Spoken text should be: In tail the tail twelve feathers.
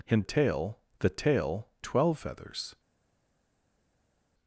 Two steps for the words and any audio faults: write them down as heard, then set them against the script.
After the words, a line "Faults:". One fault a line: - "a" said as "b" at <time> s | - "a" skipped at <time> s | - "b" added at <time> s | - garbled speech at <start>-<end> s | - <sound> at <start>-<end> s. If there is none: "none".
In tail the tail twelve feathers.
Faults:
none